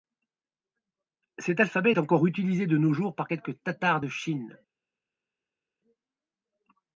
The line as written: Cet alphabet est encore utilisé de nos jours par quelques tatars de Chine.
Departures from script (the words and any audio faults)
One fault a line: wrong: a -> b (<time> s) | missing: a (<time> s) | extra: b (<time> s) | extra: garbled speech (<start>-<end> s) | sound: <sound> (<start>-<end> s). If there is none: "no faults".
no faults